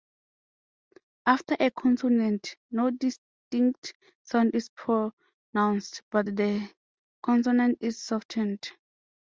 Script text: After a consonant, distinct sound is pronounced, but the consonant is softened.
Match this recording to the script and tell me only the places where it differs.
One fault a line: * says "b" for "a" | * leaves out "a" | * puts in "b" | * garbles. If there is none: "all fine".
* puts in "no"